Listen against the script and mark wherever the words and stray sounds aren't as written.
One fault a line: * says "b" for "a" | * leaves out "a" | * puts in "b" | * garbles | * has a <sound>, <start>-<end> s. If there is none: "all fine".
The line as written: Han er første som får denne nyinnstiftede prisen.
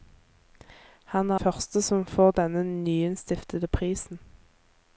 all fine